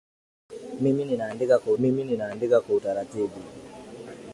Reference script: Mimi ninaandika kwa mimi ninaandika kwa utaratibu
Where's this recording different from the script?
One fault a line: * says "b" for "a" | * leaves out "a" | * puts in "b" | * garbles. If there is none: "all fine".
all fine